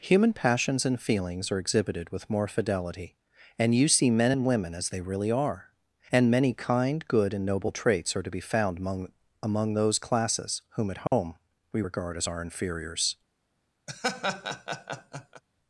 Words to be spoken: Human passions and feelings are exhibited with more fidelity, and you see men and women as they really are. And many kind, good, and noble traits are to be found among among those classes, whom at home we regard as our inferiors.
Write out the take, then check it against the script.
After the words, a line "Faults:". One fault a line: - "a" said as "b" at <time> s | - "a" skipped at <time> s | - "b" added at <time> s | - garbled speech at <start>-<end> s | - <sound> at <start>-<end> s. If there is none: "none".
Human passions and feelings are exhibited with more fidelity, and you see men and women as they really are. And many kind, good, and noble traits are to be found among among those classes, whom at home we regard as our inferiors.
Faults:
- dropout at 11.1-11.1 s
- laugh at 13.9-15.4 s